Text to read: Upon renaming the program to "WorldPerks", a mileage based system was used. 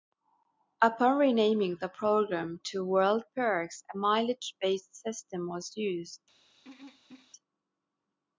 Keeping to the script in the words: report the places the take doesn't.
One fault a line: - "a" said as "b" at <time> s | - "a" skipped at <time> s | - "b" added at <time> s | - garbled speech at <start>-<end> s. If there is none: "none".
none